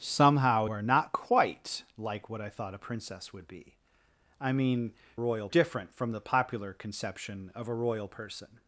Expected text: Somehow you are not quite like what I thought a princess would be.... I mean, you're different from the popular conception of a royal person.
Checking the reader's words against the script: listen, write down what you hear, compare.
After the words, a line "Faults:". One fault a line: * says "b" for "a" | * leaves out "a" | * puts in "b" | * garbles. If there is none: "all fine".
Somehow are not quite like what I thought a princess would be.... I mean, royal different from the popular conception of a royal person.
Faults:
* leaves out "you"
* says "royal" for "you're"